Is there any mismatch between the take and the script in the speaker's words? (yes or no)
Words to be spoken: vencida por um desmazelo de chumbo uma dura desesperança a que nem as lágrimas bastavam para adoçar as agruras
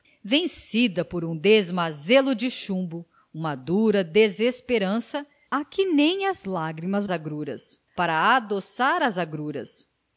yes